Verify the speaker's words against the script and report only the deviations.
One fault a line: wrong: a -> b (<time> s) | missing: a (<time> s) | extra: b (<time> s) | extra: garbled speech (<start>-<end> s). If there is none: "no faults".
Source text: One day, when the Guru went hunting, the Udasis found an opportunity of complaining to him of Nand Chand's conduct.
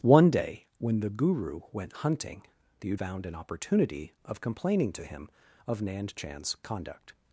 missing: Udasis (2.9 s)